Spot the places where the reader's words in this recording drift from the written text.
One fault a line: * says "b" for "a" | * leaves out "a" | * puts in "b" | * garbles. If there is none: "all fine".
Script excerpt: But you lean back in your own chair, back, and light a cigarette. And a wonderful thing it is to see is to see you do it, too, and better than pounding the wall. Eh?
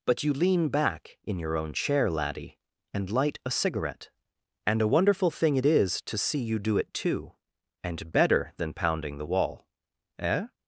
* says "laddie" for "back"
* leaves out "is to see"